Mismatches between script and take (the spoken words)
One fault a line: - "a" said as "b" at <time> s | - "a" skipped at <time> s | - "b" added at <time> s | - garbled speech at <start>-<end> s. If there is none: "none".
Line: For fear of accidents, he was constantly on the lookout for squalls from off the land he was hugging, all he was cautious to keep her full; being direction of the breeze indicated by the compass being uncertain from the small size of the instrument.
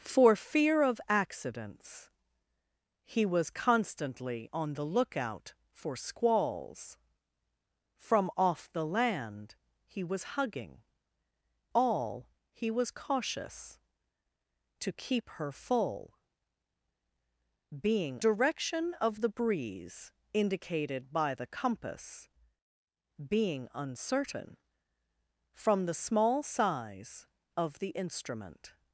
none